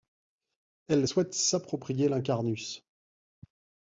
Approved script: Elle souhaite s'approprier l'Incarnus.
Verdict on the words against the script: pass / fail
pass